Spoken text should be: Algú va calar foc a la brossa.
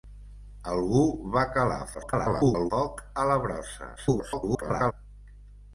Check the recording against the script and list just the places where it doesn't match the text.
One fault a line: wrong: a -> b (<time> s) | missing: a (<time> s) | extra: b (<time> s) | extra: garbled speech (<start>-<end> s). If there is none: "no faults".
extra: garbled speech (1.9-2.7 s)
extra: garbled speech (4.0-4.9 s)